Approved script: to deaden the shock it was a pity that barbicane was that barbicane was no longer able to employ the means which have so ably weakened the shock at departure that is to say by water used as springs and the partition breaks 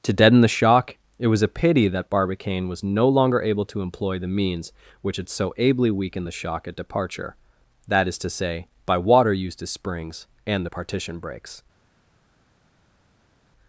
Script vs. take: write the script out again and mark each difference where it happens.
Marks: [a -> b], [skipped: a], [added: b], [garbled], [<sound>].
to deaden the shock it was a pity that barbicane was [skipped: that barbicane was] no longer able to employ the means which [have -> had] so ably weakened the shock at departure that is to say by water used as springs and the partition breaks